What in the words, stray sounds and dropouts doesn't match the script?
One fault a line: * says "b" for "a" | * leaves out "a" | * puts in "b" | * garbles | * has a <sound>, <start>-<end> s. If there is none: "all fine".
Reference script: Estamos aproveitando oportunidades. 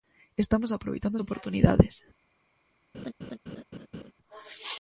* has a laugh, 2.9-4.1 s